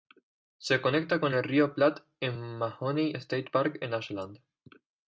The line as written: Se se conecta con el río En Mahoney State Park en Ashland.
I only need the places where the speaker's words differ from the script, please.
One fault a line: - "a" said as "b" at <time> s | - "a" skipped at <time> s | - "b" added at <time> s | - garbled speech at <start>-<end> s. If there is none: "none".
- "se" skipped at 0.8 s
- "Platte" added at 1.7 s